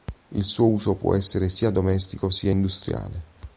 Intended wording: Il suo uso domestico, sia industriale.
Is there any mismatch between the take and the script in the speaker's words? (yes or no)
yes